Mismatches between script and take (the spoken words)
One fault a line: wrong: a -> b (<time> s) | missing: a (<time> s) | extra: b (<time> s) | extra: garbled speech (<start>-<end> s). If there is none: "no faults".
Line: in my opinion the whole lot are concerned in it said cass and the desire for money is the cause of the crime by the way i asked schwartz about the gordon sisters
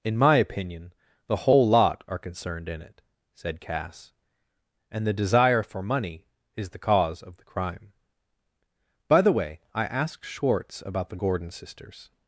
no faults